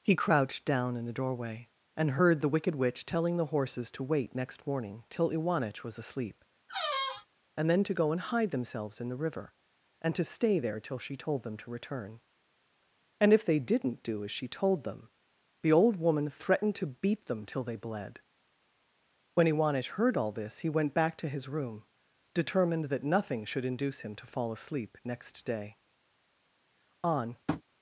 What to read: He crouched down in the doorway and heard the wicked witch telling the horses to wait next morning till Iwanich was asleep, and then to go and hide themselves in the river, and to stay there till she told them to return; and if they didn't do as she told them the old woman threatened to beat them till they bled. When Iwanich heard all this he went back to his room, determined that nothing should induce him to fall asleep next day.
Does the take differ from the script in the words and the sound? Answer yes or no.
yes